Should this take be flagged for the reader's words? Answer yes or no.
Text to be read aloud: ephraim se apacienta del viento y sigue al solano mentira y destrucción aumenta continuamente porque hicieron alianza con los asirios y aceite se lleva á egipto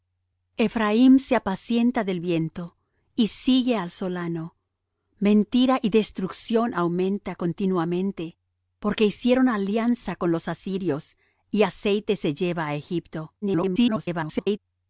yes